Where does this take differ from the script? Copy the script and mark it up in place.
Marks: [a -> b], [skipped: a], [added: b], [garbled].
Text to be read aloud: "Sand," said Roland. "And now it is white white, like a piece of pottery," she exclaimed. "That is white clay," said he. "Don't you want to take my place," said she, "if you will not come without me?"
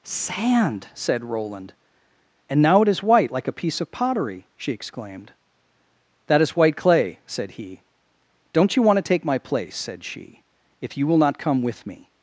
"Sand," said Roland. "And now it is white [skipped: white,] like a piece of pottery," she exclaimed. "That is white clay," said he. "Don't you want to take my place," said she, "if you will not come [without -> with] me?"